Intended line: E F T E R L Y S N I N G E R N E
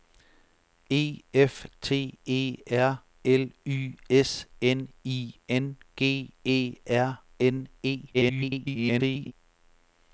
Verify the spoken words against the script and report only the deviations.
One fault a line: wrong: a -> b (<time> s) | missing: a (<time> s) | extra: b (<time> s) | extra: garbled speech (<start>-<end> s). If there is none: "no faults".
extra: garbled speech (8.1-9.3 s)